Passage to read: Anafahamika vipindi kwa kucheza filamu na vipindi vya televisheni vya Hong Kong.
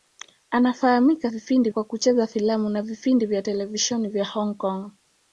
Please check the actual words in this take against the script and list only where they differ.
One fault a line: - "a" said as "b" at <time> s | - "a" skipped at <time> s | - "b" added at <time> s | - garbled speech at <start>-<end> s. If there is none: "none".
none